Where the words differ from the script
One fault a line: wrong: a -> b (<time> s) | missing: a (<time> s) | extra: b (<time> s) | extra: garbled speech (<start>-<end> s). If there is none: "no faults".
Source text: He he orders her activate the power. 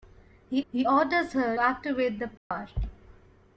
no faults